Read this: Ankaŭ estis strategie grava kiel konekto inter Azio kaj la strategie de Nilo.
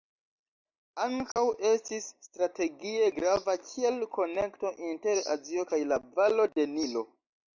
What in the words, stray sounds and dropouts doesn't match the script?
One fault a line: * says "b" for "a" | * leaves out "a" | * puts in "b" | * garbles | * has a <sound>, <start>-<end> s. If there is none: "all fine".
* has a dropout, 1.3-1.4 s
* says "valo" for "strategie"